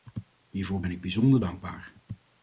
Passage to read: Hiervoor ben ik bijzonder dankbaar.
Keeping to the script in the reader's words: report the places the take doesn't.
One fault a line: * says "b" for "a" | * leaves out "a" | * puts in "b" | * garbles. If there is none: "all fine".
all fine